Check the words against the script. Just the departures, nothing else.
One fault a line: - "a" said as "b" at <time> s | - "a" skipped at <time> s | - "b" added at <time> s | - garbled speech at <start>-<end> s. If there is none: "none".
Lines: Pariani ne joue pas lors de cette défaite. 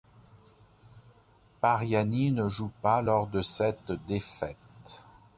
none